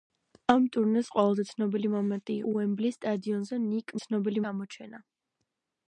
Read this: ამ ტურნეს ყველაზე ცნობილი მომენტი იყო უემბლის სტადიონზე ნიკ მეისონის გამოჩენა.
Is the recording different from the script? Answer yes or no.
yes